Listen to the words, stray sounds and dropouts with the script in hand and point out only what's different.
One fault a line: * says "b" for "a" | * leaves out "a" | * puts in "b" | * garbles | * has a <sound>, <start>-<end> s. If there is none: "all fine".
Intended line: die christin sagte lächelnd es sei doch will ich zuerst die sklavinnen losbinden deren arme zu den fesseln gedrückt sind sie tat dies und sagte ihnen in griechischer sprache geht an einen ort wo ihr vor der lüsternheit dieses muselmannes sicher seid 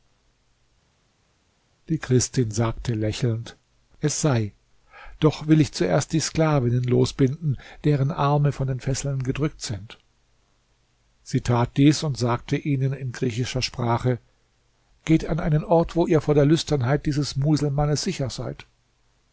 * says "von" for "zu"